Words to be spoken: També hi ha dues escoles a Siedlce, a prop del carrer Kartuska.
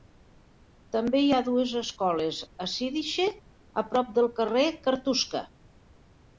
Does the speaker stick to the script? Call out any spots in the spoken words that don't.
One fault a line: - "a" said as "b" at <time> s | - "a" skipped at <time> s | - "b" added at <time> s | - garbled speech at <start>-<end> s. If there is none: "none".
none